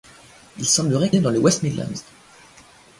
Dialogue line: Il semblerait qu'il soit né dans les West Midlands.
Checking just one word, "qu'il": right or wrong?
wrong